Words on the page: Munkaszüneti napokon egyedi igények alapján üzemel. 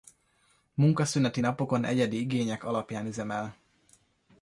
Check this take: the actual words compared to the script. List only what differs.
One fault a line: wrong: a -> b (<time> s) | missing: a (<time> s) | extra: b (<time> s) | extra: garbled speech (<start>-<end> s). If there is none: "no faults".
no faults